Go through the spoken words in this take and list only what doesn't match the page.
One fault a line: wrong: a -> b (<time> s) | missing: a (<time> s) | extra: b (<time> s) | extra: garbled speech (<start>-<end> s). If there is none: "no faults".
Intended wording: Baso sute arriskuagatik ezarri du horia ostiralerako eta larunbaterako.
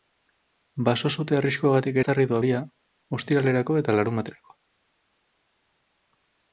no faults